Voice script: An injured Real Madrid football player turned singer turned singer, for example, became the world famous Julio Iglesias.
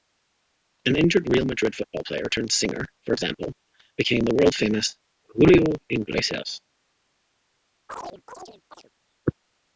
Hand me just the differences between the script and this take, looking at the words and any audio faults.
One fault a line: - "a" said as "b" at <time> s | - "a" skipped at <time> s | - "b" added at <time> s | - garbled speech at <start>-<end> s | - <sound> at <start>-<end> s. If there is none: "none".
- "turned singer" skipped at 2.9 s
- chirp at 7.9-8.9 s